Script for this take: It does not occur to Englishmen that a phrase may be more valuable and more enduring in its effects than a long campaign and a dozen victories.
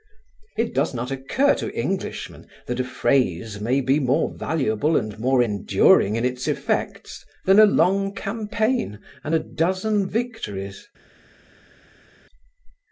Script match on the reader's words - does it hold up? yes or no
yes